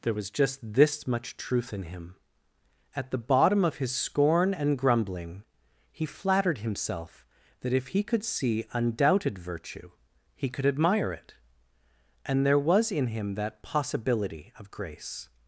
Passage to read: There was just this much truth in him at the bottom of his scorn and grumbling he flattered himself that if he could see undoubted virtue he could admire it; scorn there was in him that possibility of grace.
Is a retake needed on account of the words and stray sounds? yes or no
yes